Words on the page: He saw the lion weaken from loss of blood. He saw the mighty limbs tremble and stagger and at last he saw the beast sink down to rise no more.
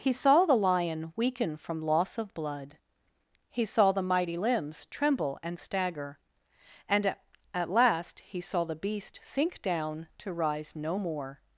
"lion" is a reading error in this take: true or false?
false